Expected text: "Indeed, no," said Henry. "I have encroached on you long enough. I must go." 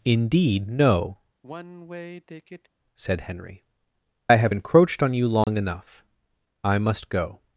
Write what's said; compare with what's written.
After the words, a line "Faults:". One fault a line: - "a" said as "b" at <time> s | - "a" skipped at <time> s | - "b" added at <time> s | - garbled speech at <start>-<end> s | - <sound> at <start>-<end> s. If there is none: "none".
"Indeed, no," said Henry. "I have encroached on you long enough. I must go."
Faults:
- sigh at 1.4-2.7 s
- dropout at 5.4-5.5 s